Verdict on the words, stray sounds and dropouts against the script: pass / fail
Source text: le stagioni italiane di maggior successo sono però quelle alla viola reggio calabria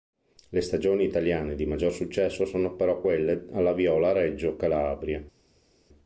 pass